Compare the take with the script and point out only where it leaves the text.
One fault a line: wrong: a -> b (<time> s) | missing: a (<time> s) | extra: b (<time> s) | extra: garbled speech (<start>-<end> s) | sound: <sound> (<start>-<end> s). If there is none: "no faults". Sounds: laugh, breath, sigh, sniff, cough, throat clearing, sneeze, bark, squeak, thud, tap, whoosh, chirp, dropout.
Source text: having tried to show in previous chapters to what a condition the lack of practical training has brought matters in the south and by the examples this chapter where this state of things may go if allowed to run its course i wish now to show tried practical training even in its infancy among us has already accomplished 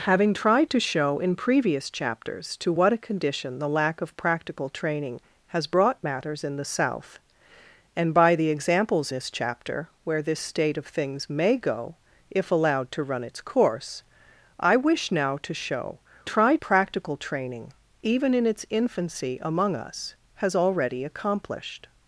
no faults